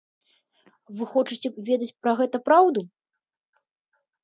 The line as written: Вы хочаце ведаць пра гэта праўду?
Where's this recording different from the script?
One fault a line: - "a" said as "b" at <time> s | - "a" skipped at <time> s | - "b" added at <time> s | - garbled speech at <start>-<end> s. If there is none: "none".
none